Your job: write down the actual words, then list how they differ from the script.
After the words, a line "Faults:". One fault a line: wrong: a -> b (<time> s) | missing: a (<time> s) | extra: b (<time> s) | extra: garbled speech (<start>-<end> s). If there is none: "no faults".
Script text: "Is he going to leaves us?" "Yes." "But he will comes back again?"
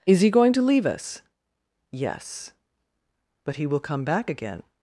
"Is he going to leave us?" "Yes." "But he will come back again?"
Faults:
wrong: leaves -> leave (0.6 s)
wrong: comes -> come (3.8 s)